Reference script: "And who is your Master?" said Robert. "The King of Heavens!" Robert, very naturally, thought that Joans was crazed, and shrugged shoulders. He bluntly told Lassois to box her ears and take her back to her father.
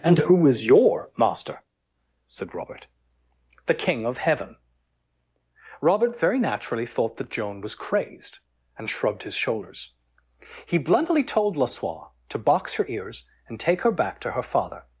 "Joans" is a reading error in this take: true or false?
true